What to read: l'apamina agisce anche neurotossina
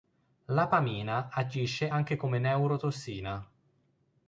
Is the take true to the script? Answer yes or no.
no